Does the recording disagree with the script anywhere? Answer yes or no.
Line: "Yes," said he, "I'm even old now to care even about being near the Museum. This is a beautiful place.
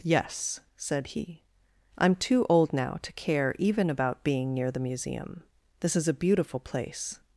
yes